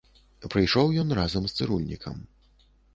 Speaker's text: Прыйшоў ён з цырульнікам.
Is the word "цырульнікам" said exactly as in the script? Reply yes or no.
yes